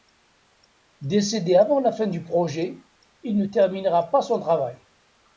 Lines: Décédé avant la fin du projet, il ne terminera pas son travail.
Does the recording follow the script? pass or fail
pass